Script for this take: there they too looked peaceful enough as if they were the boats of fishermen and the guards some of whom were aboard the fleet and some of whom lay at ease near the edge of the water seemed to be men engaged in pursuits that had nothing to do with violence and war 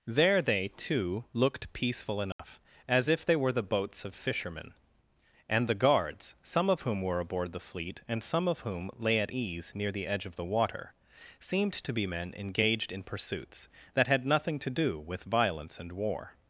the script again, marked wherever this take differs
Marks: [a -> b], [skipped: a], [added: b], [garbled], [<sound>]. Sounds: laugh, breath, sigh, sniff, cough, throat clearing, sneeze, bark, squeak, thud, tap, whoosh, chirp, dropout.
there they too looked peaceful enough [dropout] as if they were the boats of fishermen and the guards some of whom were aboard the fleet and some of whom lay at ease near the edge of the water seemed to be men engaged in pursuits that had nothing to do with violence and war